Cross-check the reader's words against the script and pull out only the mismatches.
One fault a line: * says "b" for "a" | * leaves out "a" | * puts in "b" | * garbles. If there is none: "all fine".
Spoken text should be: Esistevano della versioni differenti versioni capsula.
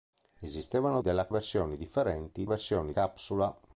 all fine